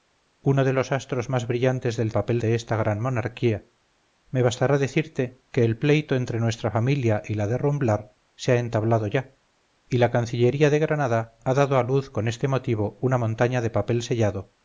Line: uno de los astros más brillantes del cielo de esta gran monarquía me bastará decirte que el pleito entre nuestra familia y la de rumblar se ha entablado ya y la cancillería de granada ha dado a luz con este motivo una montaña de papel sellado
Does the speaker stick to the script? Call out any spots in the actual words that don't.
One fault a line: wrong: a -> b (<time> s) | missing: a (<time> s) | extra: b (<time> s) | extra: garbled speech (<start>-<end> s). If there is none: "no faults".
wrong: cielo -> papel (2.1 s)